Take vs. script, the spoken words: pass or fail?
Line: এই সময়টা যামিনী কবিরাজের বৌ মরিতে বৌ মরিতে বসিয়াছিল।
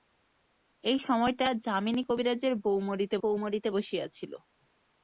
pass